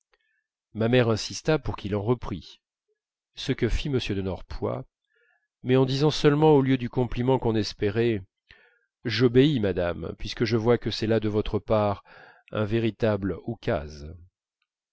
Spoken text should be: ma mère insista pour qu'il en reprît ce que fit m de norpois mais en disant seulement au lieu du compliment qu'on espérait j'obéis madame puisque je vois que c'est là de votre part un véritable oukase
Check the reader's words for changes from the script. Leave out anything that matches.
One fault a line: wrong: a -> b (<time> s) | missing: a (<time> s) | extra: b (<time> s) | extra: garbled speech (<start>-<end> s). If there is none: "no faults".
no faults